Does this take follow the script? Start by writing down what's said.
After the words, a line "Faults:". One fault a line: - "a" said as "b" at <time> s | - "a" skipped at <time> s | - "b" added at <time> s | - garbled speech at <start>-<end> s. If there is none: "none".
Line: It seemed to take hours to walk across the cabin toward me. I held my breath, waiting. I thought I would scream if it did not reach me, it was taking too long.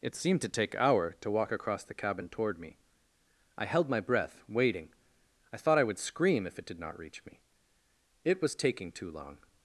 It seemed to take hour to walk across the cabin toward me. I held my breath, waiting. I thought I would scream if it did not reach me, it was taking too long.
Faults:
- "hours" said as "hour" at 0.8 s